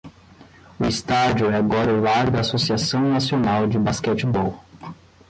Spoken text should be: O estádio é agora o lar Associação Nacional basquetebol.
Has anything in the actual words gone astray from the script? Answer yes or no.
yes